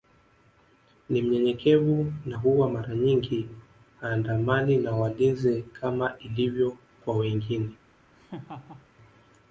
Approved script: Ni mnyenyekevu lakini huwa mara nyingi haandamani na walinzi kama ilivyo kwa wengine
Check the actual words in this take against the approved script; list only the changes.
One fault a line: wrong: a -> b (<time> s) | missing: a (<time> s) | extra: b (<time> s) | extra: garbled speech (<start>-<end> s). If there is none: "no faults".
wrong: lakini -> na (2.2 s)